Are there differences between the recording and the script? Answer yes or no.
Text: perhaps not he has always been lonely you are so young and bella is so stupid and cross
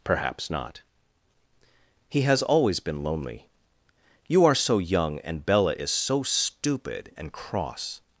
no